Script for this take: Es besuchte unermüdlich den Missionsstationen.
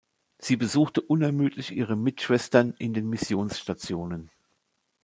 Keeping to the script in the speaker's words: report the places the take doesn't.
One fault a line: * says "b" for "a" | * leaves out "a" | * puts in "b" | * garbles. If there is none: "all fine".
* says "Sie" for "Es"
* puts in "ihre Mitschwestern in"